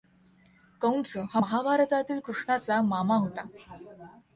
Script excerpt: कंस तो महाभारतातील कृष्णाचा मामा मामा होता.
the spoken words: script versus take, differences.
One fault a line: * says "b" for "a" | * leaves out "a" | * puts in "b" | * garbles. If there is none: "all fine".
* says "हा" for "तो"
* leaves out "मामा"